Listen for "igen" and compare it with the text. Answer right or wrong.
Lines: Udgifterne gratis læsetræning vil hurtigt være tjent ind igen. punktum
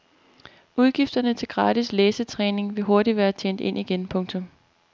right